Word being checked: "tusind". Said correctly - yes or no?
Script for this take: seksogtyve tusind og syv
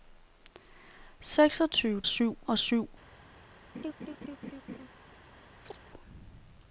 no